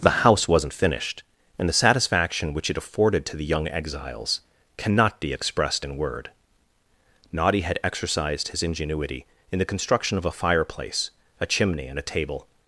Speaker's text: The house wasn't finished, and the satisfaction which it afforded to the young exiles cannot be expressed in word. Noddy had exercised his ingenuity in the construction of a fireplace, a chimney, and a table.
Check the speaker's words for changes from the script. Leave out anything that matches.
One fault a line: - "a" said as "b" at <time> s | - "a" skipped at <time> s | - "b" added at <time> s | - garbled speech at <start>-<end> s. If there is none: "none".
none